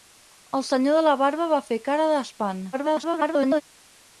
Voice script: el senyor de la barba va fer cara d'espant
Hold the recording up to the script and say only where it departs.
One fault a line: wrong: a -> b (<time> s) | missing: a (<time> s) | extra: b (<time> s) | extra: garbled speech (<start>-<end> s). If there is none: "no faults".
extra: garbled speech (2.7-3.6 s)